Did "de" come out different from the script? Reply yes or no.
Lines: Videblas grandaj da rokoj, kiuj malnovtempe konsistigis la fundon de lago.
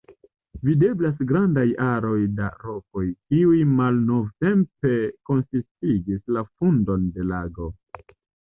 no